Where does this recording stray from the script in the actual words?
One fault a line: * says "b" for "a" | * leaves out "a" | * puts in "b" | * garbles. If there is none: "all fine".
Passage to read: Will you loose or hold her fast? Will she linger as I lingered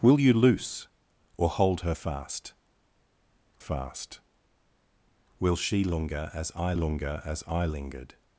* puts in "fast"
* puts in "linger as I"